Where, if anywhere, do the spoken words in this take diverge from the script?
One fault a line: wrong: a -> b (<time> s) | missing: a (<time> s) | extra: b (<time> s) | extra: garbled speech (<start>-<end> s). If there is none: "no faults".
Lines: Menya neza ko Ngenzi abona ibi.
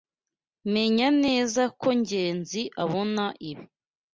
no faults